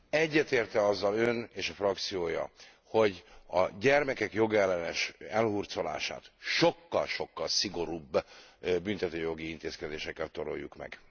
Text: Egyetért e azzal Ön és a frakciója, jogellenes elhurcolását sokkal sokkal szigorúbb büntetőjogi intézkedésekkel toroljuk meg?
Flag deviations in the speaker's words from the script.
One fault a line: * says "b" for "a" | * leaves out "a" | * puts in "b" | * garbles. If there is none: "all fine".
* puts in "hogy a gyermekek"